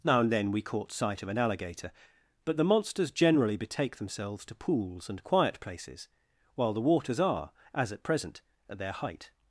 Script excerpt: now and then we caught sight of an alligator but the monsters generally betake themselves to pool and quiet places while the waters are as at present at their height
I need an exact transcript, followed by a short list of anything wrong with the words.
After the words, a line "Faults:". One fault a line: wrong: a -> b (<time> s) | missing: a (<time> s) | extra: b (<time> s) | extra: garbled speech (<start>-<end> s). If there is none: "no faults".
now and then we caught sight of an alligator but the monsters generally betake themselves to pools and quiet places while the waters are as at present at their height
Faults:
wrong: pool -> pools (4.5 s)